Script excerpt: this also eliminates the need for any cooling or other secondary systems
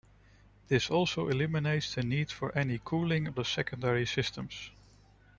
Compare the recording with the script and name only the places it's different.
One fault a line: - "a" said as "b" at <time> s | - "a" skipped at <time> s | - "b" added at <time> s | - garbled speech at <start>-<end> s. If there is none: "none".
- "or" skipped at 3.3 s